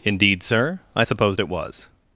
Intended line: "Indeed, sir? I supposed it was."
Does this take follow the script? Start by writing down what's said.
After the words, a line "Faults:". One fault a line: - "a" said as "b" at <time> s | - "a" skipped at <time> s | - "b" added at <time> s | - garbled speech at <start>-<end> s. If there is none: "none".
"Indeed, sir? I supposed it was."
Faults:
none